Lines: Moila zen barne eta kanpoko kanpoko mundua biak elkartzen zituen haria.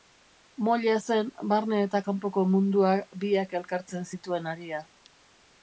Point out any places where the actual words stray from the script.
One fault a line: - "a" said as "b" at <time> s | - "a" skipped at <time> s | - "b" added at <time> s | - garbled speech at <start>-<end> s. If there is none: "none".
- "kanpoko" skipped at 2.4 s